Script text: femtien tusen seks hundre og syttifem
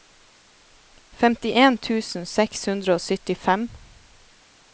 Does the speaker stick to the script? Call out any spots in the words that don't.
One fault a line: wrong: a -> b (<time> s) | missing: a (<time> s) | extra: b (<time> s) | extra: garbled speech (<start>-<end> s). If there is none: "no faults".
no faults